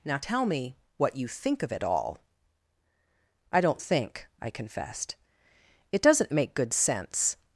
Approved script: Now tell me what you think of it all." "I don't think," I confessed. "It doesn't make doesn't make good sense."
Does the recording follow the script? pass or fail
fail